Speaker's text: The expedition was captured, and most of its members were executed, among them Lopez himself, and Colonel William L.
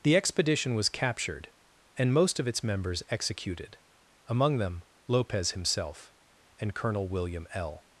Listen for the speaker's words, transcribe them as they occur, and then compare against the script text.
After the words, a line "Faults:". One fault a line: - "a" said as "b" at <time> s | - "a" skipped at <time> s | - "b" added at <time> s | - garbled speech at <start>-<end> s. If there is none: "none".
The expedition was captured, and most of its members executed, among them Lopez himself, and Colonel William L.
Faults:
- "were" skipped at 3.0 s